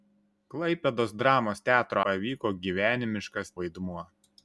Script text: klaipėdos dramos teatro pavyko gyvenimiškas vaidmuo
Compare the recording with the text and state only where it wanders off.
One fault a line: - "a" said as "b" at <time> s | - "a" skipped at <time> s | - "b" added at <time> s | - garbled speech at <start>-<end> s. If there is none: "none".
none